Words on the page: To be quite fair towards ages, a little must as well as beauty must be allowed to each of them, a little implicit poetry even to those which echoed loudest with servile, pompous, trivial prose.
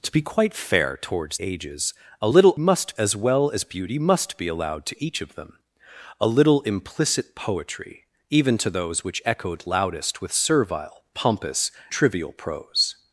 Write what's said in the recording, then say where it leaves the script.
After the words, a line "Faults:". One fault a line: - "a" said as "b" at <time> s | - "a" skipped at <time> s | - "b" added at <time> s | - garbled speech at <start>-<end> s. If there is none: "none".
To be quite fair towards ages, a little must as well as beauty must be allowed to each of them, a little implicit poetry even to those which echoed loudest with servile, pompous, trivial prose.
Faults:
none